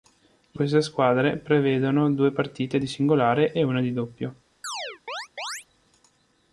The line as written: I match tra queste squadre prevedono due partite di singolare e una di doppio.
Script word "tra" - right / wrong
wrong